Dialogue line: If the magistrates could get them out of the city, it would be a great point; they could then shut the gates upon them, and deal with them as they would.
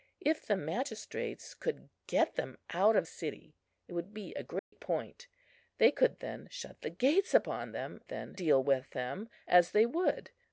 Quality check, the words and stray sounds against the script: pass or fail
fail